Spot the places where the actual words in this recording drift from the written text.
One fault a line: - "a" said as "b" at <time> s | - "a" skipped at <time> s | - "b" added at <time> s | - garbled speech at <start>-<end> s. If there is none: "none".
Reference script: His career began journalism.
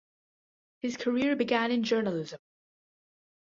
- "in" added at 1.7 s